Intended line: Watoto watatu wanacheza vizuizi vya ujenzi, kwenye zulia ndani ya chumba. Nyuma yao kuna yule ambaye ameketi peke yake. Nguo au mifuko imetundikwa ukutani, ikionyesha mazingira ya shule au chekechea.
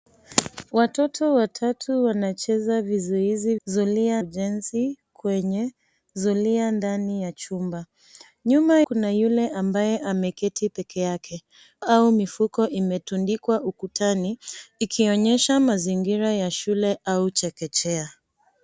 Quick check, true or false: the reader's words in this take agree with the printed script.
false